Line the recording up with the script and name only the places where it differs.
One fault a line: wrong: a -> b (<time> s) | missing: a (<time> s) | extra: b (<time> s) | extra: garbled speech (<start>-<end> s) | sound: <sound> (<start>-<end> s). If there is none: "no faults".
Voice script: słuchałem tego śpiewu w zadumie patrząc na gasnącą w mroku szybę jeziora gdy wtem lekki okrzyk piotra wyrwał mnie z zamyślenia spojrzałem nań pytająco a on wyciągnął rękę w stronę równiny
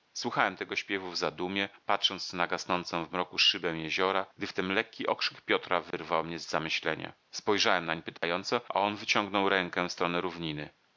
sound: dropout (5.9-5.9 s)
sound: dropout (8.2-8.2 s)